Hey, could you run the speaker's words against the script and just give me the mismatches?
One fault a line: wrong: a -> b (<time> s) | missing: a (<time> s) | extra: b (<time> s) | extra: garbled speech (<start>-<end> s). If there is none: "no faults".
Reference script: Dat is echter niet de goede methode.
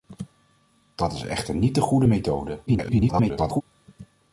extra: garbled speech (2.7-3.6 s)